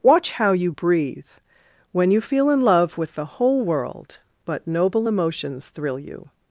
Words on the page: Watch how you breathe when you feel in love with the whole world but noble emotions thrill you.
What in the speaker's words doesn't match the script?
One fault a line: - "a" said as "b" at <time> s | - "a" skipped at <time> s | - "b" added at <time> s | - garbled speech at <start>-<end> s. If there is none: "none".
none